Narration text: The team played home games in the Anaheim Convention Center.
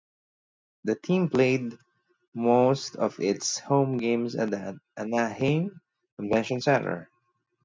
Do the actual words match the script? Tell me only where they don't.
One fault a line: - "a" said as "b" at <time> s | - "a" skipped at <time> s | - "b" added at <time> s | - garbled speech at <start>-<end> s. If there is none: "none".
- "most of its" added at 2.3 s
- "in" said as "at" at 4.3 s